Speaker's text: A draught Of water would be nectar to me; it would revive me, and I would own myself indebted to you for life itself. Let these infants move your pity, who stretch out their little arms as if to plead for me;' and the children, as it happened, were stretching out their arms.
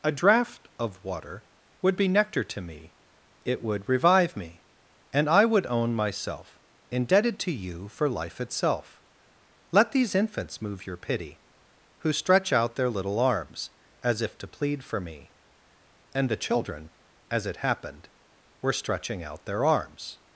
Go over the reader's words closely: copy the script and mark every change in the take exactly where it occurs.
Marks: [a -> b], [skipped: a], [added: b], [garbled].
A draught Of water would be nectar to me; it would revive me, and I would own myself indebted to you for life itself. Let these infants move your pity, who stretch out their little arms as if to plead for me;' and the children, as it happened, were stretching out their arms.